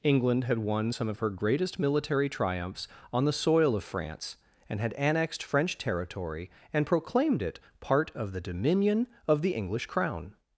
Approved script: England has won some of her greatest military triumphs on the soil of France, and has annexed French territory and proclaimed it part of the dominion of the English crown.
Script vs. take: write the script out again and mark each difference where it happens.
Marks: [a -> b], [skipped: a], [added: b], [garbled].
England [has -> had] won some of her greatest military triumphs on the soil of France, and [has -> had] annexed French territory and proclaimed it part of the dominion of the English crown.